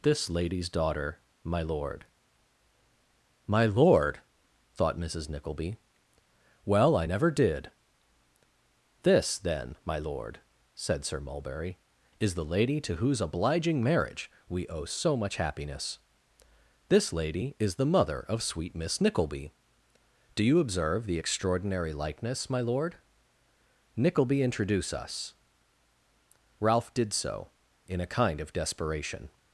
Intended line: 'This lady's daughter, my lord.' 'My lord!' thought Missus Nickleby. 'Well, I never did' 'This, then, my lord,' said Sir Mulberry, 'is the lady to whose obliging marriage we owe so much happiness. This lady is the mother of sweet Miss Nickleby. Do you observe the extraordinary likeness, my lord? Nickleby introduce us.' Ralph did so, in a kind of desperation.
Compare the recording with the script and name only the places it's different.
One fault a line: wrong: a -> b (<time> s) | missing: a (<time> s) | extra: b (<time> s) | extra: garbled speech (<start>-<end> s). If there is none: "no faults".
no faults